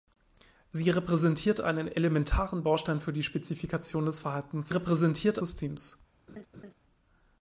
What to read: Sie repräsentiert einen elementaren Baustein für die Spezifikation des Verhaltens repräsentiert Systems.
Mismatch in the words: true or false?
false